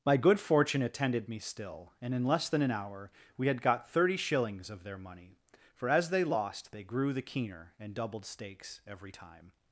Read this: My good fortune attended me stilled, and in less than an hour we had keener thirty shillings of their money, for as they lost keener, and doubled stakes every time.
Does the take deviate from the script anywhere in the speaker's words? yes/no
yes